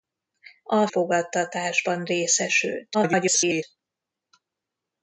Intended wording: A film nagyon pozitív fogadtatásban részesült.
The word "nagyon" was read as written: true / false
false